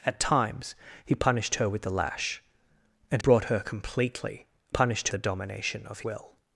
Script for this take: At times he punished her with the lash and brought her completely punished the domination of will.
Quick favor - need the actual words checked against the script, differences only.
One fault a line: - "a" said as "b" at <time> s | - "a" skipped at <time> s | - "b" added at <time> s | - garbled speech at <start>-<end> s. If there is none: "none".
none